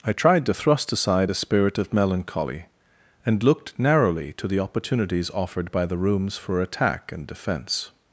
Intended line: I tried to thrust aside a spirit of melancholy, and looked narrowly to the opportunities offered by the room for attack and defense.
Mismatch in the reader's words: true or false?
true